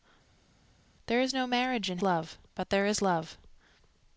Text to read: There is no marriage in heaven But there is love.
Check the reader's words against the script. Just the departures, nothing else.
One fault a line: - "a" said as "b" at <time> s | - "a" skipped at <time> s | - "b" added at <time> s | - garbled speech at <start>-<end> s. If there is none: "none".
- "heaven" said as "love" at 2.0 s